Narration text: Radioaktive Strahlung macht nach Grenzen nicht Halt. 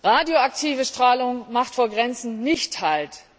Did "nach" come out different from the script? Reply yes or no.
yes